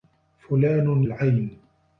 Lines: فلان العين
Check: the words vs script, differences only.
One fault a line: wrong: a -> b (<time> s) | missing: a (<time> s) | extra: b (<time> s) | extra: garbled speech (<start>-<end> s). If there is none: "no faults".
no faults